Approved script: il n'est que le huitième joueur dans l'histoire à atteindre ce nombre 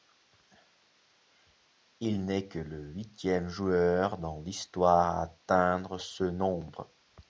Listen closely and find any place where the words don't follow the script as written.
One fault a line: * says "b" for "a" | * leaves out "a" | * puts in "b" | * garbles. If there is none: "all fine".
all fine